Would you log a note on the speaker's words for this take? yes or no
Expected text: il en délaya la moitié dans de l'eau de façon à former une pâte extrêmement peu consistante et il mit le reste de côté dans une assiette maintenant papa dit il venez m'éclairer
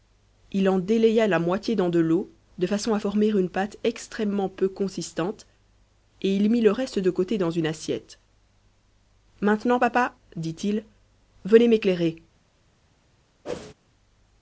no